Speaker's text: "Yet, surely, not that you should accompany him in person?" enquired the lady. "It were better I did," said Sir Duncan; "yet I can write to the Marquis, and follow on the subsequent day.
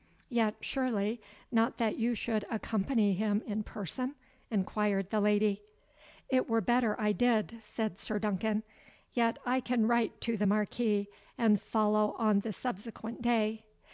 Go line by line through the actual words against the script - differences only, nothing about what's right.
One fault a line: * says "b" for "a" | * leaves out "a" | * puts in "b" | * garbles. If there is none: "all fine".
all fine